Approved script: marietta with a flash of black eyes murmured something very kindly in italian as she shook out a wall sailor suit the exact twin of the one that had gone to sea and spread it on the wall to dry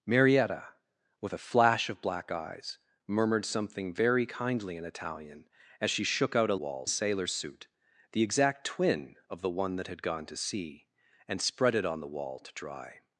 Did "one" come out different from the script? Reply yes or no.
no